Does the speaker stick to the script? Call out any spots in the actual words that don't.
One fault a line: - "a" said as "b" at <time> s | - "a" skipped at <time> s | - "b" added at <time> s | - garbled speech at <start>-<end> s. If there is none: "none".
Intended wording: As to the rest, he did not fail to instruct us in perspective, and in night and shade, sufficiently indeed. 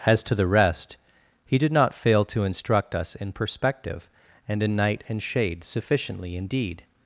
none